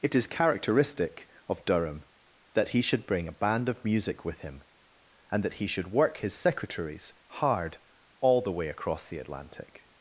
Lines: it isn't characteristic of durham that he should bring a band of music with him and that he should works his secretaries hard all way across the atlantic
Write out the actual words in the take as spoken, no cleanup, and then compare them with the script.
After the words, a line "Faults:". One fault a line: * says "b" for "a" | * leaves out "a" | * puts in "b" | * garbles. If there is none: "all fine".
it is characteristic of durham that he should bring a band of music with him and that he should work his secretaries hard all the way across the atlantic
Faults:
* says "is" for "isn't"
* says "work" for "works"
* puts in "the"